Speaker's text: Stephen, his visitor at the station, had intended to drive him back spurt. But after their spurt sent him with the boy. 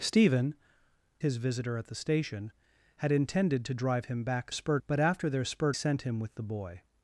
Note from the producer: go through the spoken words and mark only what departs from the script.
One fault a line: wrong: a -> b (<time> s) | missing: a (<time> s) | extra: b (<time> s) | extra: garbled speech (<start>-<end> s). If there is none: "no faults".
no faults